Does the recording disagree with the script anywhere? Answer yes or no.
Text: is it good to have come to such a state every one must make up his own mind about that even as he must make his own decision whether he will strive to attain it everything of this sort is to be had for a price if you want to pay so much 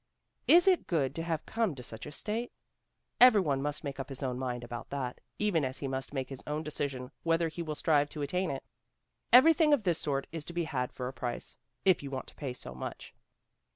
no